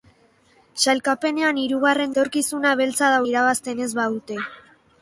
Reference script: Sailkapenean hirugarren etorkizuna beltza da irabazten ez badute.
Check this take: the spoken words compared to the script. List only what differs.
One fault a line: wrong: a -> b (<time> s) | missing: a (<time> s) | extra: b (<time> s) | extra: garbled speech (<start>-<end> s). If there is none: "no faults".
no faults